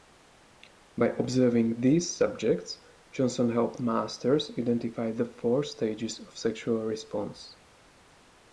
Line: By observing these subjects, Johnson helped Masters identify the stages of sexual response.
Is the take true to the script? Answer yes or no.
no